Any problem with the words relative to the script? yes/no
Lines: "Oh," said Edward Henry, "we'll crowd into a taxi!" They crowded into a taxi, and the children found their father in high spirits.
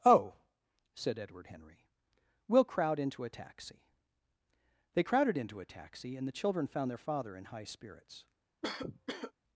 no